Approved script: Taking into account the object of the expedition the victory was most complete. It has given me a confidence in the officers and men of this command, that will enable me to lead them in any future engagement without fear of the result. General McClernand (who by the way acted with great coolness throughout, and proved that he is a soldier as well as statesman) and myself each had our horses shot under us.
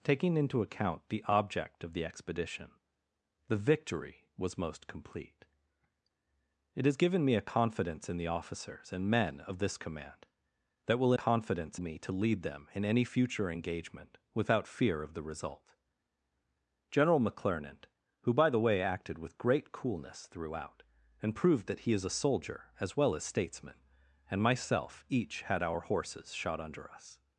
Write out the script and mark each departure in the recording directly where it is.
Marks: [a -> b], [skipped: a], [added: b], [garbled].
Taking into account the object of the expedition the victory was most complete. It has given me a confidence in the officers and men of this command, that will [enable -> confidence] me to lead them in any future engagement without fear of the result. General McClernand (who by the way acted with great coolness throughout, and proved that he is a soldier as well as statesman) and myself each had our horses shot under us.